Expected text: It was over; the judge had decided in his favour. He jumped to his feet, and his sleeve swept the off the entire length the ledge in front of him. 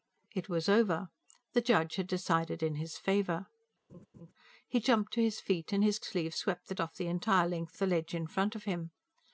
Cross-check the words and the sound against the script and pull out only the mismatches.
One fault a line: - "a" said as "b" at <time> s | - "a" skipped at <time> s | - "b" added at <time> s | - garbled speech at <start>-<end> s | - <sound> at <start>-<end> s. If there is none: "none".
- laugh at 3.9-4.3 s